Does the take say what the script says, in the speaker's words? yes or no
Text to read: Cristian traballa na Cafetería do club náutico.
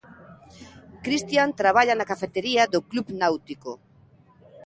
yes